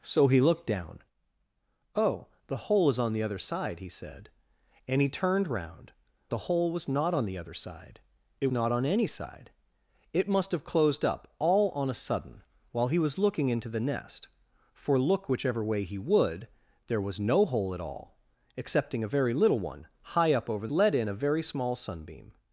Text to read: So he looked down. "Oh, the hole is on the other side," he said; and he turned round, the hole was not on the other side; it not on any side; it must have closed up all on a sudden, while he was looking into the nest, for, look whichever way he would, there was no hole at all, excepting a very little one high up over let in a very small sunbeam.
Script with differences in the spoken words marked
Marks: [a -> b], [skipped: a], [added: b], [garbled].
So he looked down. "Oh, the hole is on the other side," he said; and he turned round, the hole was not on the other side; it not on any side; it must have closed up all on a sudden, while he was looking into the nest, for, look whichever way he would, there was no hole at all, excepting a very little one high up over let in a very small sunbeam.